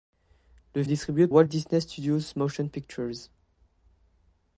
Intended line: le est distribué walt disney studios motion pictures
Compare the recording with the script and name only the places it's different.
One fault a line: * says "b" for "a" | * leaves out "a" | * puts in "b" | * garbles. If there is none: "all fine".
all fine